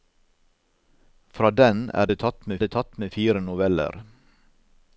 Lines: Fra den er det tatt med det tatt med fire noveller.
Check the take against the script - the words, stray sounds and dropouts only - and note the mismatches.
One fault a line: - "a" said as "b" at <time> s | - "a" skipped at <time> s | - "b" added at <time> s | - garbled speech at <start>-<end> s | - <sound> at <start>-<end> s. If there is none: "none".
none